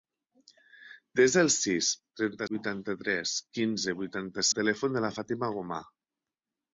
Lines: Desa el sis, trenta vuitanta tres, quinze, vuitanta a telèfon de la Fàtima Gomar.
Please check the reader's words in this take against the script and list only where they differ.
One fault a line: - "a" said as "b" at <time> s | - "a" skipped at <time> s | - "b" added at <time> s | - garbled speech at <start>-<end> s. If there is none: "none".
none